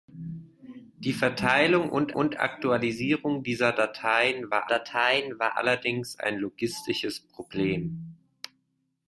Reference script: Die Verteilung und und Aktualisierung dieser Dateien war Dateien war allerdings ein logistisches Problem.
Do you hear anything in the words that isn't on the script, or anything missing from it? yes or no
no